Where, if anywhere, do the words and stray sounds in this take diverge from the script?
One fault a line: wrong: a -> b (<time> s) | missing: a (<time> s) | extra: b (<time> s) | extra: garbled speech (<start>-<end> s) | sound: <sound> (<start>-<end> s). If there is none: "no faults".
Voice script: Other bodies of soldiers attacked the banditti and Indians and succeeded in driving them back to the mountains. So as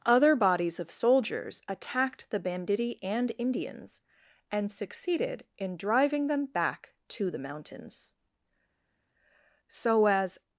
no faults